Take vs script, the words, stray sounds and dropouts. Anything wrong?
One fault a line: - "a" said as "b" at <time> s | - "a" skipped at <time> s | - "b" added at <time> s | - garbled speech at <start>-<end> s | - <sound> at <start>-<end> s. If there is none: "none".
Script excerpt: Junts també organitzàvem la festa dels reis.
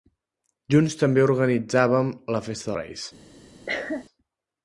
- "dels" skipped at 2.7 s
- cough at 3.7-4.0 s